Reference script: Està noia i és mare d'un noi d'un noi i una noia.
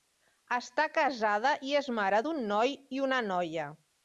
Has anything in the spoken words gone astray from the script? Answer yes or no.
yes